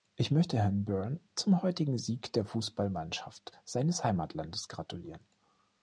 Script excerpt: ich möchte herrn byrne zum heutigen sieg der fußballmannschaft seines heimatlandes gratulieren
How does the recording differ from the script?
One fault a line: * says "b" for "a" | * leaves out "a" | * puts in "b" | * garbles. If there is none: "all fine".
all fine